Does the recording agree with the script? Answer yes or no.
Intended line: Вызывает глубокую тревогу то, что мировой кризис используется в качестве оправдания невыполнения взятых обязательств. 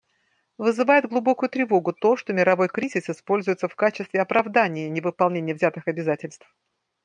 yes